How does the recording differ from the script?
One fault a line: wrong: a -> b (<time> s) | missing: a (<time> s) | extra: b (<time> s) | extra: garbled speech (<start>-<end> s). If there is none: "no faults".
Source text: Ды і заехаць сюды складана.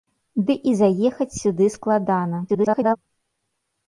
extra: garbled speech (2.5-3.0 s)